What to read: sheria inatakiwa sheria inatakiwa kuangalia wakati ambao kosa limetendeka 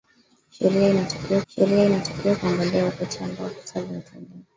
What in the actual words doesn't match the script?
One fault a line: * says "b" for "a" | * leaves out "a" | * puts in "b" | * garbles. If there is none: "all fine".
all fine